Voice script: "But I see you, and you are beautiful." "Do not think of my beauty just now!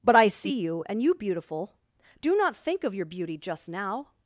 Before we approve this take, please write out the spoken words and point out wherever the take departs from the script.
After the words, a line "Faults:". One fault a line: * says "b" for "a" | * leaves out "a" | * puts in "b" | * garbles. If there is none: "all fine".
"But I see you, and you beautiful." "Do not think of your beauty just now!
Faults:
* leaves out "are"
* says "your" for "my"